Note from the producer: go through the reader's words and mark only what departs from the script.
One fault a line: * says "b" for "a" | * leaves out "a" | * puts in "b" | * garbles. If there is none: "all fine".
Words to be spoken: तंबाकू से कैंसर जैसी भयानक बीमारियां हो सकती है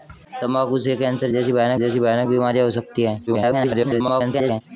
* puts in "जैसी भयानक"
* garbles